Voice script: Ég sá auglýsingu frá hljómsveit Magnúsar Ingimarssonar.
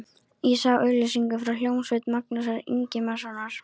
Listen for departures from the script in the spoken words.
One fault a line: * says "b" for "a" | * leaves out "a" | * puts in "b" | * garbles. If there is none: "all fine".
all fine